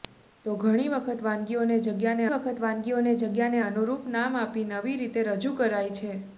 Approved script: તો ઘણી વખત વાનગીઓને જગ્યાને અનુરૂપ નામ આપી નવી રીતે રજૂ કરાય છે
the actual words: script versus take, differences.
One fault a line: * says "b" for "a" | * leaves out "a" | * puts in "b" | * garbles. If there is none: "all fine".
* puts in "વખત વાનગીઓને જગ્યાને"